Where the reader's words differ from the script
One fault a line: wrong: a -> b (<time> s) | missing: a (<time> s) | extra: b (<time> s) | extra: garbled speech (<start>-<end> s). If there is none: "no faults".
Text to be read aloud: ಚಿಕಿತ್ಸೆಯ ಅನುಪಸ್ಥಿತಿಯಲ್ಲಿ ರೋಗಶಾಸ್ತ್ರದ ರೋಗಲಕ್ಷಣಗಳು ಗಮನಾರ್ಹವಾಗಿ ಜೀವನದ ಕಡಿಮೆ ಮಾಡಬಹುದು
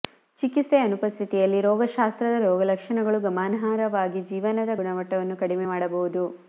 extra: ಗುಣಮಟ್ಟವನ್ನು (4.8 s)